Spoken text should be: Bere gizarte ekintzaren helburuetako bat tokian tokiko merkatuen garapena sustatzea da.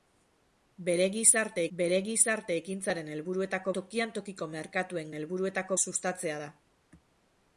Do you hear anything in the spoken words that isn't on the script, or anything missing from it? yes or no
yes